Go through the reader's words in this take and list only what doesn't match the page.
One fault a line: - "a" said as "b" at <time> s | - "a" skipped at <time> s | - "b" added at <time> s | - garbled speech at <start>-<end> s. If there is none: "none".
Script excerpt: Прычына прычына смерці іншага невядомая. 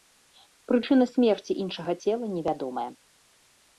- "прычына" skipped at 1.1 s
- "цела" added at 2.0 s